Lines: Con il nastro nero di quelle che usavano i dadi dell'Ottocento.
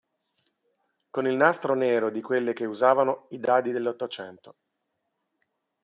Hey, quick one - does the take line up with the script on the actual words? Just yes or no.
yes